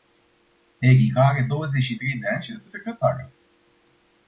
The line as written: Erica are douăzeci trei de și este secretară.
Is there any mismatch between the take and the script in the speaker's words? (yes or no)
yes